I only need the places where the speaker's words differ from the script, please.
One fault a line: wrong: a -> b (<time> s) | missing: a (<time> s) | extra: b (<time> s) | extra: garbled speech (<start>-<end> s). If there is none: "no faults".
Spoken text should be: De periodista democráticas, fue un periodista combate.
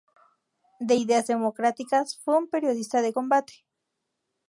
wrong: periodista -> ideas (0.9 s)
extra: de (3.0 s)